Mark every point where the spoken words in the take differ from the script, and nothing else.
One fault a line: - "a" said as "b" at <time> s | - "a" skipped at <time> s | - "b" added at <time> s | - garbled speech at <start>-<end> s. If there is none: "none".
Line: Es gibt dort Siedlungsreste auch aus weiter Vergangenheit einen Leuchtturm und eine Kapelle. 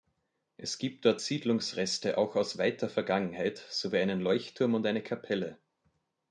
- "sowie" added at 3.6 s